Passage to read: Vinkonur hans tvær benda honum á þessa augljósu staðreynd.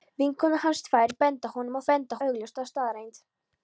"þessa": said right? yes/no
no